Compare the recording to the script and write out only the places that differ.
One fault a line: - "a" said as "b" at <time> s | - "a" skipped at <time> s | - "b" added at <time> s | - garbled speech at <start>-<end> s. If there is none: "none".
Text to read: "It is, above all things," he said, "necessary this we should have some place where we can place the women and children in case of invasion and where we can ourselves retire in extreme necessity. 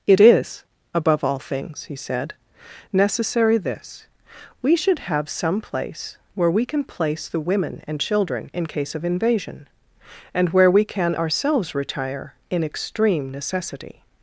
none